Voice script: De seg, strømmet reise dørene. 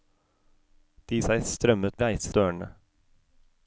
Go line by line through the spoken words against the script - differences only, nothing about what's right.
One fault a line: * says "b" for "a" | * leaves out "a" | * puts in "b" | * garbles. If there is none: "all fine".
all fine